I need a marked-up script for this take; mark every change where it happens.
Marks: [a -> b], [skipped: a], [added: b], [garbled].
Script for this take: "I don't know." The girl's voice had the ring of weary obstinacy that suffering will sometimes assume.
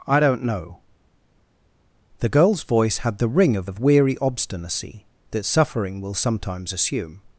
"I don't know." The girl's voice had the ring of [added: of] weary obstinacy that suffering will sometimes assume.